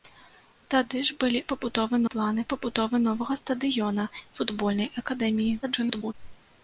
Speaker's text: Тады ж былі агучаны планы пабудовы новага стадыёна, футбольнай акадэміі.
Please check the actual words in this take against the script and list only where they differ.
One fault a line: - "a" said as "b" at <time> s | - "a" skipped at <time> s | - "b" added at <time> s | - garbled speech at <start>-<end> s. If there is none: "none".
- "агучаны" said as "пабудовы" at 1.5 s
- garbled speech at 5.6-6.1 s